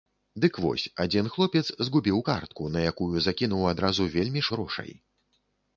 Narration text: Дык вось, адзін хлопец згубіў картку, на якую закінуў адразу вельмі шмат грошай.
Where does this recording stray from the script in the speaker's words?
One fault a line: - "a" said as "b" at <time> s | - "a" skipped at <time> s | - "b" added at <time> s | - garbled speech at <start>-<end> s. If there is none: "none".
- "шмат" skipped at 4.4 s